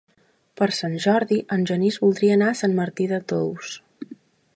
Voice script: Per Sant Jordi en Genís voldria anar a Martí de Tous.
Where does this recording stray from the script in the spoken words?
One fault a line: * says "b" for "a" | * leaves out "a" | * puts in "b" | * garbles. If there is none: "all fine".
* puts in "Sant"